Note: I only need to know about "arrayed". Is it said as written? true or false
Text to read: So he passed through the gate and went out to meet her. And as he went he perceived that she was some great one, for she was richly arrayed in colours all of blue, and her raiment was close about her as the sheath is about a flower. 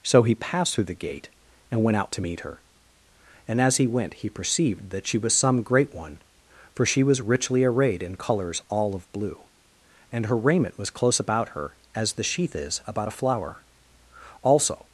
true